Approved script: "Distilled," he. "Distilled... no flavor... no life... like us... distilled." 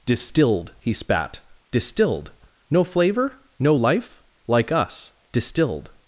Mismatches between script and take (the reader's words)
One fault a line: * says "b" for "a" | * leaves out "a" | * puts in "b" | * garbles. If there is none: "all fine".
* puts in "spat"